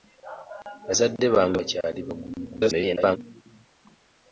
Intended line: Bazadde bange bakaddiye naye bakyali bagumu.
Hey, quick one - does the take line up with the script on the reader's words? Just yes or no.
no